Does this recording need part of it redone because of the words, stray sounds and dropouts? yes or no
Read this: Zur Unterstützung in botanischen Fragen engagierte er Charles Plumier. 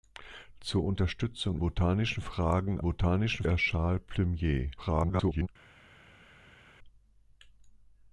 yes